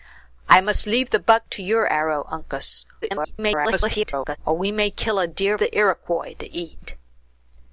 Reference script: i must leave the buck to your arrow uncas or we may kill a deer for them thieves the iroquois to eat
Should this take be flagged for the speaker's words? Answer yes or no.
yes